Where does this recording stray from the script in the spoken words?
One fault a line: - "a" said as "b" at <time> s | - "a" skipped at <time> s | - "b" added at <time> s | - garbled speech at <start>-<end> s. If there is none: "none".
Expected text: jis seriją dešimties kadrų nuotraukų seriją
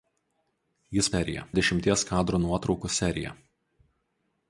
none